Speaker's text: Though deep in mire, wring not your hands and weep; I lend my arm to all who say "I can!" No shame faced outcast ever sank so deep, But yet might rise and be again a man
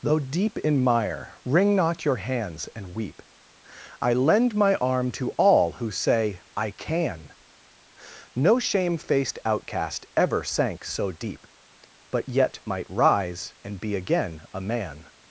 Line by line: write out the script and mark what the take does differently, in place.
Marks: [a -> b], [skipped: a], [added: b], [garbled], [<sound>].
Though deep in mire, wring not your hands and weep; I lend my arm to all who say "I can!" No shame faced outcast ever sank so deep, But yet might rise and be again a man